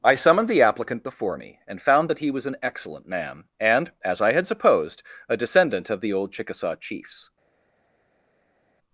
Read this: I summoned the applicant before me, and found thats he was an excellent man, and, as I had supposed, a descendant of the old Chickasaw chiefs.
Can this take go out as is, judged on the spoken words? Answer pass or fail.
fail